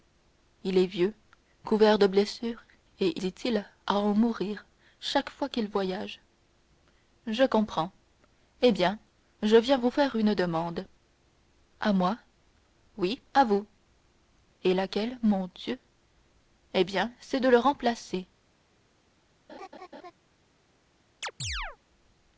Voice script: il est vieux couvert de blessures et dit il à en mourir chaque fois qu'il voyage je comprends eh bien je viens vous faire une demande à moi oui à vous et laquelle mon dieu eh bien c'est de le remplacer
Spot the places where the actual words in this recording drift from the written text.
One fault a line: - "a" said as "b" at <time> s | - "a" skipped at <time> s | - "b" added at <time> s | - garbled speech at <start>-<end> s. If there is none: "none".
none